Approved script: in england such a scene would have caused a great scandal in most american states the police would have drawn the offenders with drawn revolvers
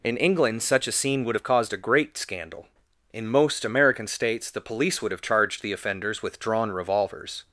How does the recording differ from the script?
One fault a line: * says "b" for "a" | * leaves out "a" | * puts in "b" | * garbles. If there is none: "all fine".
* says "charged" for "drawn"